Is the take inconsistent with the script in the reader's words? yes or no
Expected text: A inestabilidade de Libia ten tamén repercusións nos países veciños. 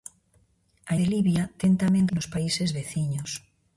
yes